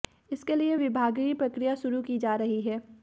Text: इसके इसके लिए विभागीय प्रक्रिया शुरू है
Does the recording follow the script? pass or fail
fail